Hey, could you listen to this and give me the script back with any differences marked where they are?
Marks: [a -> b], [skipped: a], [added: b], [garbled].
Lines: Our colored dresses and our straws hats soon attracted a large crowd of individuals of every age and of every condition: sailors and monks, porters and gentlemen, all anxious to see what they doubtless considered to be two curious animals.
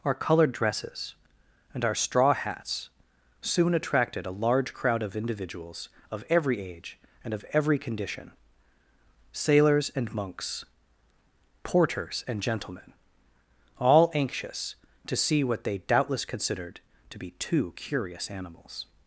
Our colored dresses and our [straws -> straw] hats soon attracted a large crowd of individuals of every age and of every condition: sailors and monks, porters and gentlemen, all anxious to see what they doubtless considered to be two curious animals.